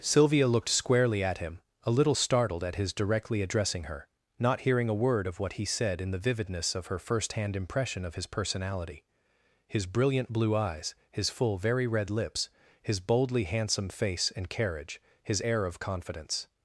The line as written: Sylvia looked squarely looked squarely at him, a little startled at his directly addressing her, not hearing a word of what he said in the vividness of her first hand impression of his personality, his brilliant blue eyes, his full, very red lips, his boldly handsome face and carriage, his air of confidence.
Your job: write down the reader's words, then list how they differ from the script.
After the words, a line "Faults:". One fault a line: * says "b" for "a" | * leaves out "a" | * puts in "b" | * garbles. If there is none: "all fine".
Sylvia looked squarely at him, a little startled at his directly addressing her, not hearing a word of what he said in the vividness of her first hand impression of his personality, his brilliant blue eyes, his full, very red lips, his boldly handsome face and carriage, his air of confidence.
Faults:
* leaves out "looked squarely"